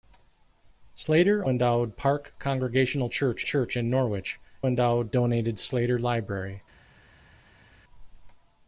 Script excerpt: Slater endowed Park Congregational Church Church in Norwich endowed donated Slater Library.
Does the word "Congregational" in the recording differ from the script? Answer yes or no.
no